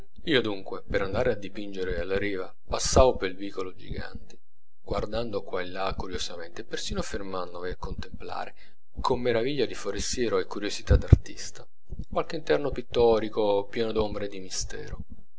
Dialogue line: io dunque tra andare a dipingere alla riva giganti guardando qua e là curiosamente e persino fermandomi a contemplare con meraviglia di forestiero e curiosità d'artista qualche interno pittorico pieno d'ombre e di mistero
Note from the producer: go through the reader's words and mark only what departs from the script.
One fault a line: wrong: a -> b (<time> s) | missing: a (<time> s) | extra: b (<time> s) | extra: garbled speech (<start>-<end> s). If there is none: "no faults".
wrong: tra -> per (0.9 s)
extra: passavo pel vicolo (2.6 s)